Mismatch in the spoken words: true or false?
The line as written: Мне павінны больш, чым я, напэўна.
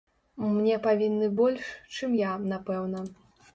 false